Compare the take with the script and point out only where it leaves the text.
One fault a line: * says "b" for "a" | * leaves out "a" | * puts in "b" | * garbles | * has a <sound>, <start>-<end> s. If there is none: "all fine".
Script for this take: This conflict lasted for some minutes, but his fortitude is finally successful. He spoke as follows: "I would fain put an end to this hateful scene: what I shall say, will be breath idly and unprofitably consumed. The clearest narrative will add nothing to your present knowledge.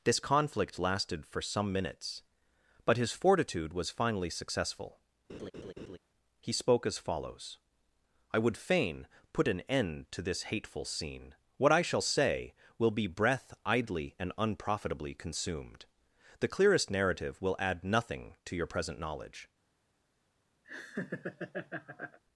* says "was" for "is"
* has a laugh, 5.3-6.0 s
* has a laugh, 20.6-22.2 s